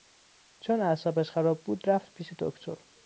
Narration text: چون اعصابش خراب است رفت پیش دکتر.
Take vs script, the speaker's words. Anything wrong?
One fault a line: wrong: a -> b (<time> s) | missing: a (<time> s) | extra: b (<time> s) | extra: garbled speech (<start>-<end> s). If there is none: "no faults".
wrong: است -> بود (1.6 s)